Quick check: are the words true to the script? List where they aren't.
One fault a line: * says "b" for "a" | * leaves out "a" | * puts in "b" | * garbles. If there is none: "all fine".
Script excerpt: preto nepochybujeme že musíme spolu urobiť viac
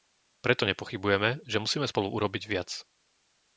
all fine